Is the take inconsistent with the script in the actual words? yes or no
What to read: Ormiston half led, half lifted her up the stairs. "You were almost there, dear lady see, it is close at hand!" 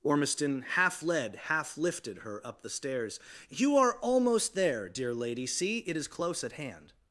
yes